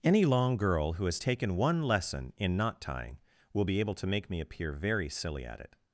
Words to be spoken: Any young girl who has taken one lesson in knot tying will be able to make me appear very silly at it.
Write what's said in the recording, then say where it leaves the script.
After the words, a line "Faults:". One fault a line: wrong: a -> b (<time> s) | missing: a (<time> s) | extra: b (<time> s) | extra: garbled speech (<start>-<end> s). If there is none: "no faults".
Any long girl who has taken one lesson in knot tying will be able to make me appear very silly at it.
Faults:
wrong: young -> long (0.2 s)